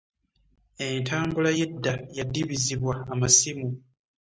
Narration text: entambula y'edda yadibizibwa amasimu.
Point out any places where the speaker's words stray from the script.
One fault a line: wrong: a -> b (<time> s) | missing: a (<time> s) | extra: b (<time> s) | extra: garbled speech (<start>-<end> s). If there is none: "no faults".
no faults